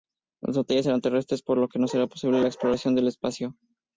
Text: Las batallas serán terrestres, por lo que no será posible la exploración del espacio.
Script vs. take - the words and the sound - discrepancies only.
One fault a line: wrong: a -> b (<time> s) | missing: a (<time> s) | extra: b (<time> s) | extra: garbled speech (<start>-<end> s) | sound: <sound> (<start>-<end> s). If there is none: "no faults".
no faults